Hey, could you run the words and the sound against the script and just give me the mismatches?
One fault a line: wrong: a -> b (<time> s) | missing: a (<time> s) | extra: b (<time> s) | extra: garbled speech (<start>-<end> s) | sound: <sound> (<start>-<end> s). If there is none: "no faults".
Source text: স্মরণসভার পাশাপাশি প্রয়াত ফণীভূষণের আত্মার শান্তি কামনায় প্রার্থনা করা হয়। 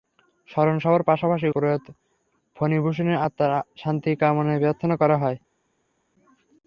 no faults